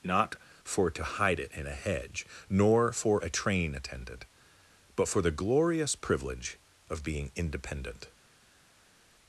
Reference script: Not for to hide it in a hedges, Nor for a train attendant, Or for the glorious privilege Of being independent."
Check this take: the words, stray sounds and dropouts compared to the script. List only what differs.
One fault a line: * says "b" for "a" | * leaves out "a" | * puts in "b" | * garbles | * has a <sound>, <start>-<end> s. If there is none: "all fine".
* says "hedge" for "hedges"
* says "But" for "Or"